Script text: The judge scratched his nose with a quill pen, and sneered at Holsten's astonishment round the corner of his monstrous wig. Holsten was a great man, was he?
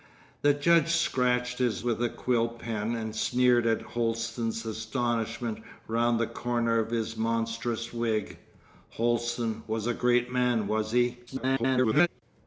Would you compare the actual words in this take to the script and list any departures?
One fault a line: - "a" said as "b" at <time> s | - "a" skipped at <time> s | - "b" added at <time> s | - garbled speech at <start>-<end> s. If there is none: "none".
- "nose" skipped at 1.9 s
- garbled speech at 11.3-12.1 s